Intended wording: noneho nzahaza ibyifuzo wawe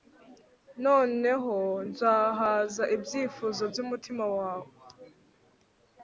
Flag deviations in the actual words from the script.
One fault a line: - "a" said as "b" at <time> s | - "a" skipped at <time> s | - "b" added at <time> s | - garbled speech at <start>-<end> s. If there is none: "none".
- "byumutima" added at 3.7 s